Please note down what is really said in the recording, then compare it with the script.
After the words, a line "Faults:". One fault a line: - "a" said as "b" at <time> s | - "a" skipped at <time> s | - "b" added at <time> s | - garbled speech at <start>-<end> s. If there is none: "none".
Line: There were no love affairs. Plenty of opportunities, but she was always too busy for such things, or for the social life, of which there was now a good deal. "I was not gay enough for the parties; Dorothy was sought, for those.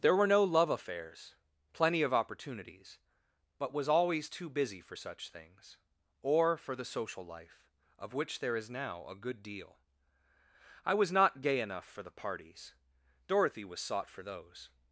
There were no love affairs. Plenty of opportunities, but was always too busy for such things, or for the social life, of which there is now a good deal. "I was not gay enough for the parties; Dorothy was sought, for those.
Faults:
- "she" skipped at 3.7 s
- "was" said as "is" at 8.6 s